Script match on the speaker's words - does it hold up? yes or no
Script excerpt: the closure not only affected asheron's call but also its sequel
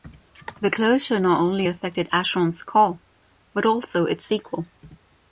yes